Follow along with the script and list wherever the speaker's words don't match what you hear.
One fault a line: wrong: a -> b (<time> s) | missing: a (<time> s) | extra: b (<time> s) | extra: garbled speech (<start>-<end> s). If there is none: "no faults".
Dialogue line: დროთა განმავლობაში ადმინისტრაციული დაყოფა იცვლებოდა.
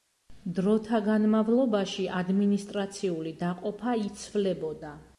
no faults